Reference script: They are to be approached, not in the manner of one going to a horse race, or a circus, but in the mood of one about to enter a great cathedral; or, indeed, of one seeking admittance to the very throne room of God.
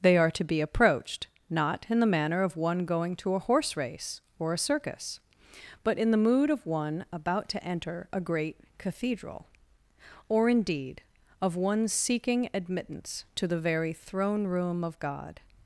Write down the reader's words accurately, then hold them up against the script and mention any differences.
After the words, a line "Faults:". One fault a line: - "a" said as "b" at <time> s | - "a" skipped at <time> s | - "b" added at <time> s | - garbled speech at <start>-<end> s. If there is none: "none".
They are to be approached, not in the manner of one going to a horse race, or a circus, but in the mood of one about to enter a great cathedral; or, indeed, of one seeking admittance to the very throne room of God.
Faults:
none